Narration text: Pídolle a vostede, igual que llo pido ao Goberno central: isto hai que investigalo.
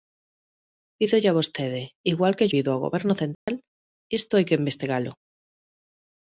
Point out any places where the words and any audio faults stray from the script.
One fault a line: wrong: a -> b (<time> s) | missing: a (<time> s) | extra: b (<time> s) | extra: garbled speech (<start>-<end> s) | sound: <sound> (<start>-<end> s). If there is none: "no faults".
missing: llo (2.5 s)
sound: dropout (3.3-3.5 s)